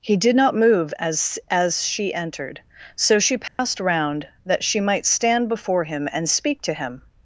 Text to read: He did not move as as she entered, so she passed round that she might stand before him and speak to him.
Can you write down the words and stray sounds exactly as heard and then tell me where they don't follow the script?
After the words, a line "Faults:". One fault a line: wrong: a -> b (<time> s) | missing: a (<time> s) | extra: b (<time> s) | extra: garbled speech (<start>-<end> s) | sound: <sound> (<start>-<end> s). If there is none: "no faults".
He did not move as as she entered, so she passed round that she might stand before him and speak to him.
Faults:
sound: dropout (3.5-3.6 s)